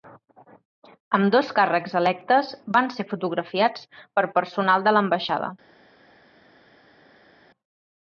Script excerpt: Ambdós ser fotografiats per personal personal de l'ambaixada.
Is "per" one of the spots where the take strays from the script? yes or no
no